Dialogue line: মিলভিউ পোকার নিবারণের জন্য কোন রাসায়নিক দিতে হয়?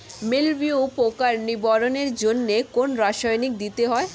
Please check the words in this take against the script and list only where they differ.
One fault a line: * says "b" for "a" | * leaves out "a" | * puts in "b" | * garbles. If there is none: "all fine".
all fine